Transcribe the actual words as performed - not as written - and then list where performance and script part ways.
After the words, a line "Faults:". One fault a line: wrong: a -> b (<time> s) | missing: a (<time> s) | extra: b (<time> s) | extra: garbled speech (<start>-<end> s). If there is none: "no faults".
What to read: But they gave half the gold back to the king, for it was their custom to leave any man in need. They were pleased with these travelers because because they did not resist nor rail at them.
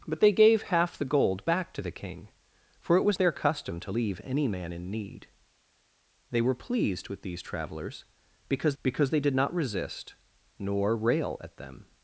But they gave half the gold back to the king, for it was their custom to leave any man in need. They were pleased with these travelers because because they did not resist nor rail at them.
Faults:
no faults